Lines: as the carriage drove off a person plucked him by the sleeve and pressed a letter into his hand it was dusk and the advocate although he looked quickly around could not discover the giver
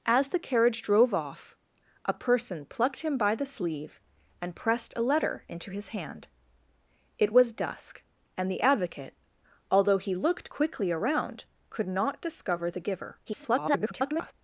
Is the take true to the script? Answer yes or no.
no